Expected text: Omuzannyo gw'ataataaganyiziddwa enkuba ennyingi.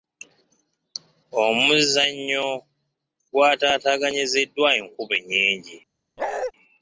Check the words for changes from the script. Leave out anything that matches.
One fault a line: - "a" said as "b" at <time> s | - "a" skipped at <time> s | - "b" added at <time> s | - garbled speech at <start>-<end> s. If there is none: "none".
none